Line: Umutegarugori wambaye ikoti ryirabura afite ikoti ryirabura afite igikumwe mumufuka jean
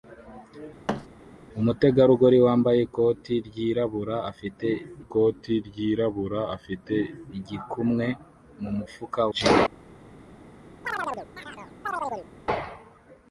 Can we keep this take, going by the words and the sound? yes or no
no